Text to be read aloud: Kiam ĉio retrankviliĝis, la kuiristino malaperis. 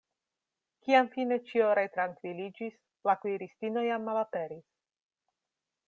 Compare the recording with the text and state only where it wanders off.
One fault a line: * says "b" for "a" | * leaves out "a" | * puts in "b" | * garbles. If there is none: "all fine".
* puts in "fine"
* puts in "jam"